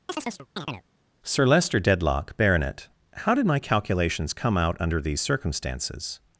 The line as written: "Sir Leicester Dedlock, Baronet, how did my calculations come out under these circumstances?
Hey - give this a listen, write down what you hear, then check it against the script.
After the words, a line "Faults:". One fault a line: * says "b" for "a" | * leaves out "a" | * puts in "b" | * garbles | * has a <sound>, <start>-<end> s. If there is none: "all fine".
"Sir Leicester Dedlock, Baronet, how did my calculations come out under these circumstances?
Faults:
* has a chirp, 0.1-0.8 s